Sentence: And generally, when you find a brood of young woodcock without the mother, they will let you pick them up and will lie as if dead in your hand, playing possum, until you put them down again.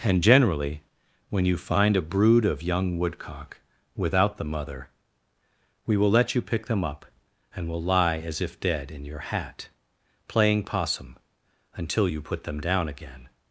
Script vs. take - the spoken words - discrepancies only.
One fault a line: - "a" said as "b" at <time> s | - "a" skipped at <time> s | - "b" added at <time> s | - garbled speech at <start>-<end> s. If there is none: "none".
- "they" said as "we" at 5.9 s
- "hand" said as "hat" at 9.2 s